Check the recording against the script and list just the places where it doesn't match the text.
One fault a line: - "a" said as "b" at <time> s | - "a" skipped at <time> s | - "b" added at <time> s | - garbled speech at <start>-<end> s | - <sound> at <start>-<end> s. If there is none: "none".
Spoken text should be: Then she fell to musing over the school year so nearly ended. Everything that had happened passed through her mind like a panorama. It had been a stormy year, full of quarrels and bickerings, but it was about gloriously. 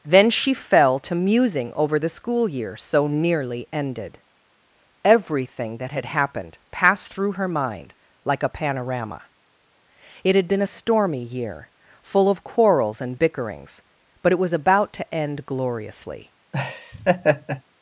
- "to end" added at 14.9 s
- laugh at 16.5-17.6 s